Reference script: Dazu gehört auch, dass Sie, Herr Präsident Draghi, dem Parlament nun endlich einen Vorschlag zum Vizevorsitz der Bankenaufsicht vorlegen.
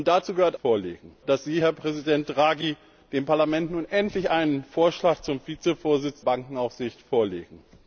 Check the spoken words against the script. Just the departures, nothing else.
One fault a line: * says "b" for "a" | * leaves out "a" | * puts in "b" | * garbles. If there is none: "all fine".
* says "vorlegen" for "auch"
* leaves out "der"